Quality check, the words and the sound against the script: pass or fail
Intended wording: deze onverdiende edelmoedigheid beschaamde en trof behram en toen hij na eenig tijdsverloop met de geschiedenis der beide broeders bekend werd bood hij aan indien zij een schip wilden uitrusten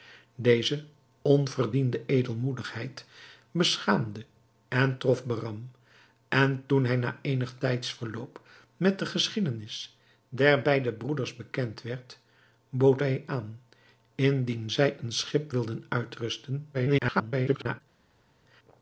fail